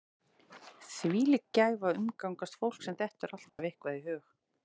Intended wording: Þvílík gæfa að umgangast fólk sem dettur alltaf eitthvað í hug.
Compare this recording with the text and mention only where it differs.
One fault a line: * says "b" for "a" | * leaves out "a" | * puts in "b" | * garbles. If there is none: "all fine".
all fine